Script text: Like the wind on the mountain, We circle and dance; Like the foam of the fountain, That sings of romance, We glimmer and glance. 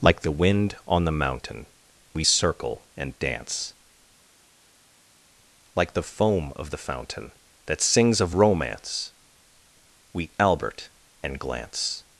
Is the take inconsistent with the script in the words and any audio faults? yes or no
yes